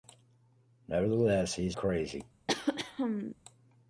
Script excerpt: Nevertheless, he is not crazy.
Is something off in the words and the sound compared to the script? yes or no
yes